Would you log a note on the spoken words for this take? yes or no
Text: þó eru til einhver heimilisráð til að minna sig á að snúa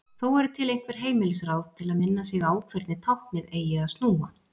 yes